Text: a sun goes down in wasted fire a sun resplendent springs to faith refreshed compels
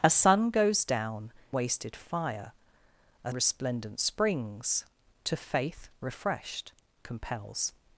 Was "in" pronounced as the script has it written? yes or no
no